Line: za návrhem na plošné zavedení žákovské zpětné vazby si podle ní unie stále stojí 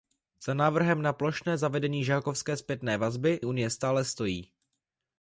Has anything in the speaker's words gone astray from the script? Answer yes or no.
yes